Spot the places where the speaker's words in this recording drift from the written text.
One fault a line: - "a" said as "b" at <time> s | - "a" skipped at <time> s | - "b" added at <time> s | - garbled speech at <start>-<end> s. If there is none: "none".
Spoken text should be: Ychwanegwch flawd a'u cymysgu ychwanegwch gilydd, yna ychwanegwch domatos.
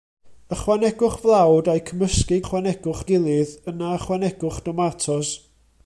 none